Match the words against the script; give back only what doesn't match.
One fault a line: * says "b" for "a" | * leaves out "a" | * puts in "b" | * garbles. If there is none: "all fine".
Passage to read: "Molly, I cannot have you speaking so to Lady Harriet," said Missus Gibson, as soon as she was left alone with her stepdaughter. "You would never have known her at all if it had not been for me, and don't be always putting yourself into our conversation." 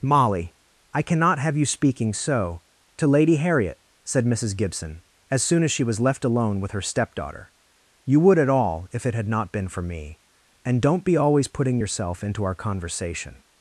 * leaves out "never have known her"